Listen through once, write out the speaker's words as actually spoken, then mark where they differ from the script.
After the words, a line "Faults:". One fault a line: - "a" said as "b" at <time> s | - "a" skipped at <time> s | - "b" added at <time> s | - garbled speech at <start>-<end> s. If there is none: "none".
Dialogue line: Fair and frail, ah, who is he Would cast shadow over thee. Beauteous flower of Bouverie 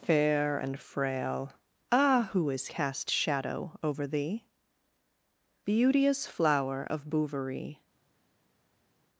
Fair and frail, ah, who is cast shadow over thee. Beauteous flower of Bouverie
Faults:
- "he Would" skipped at 2.7 s